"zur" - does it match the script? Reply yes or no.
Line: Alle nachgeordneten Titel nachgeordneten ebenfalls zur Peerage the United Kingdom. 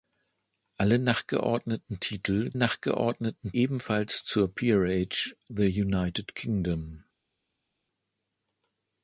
yes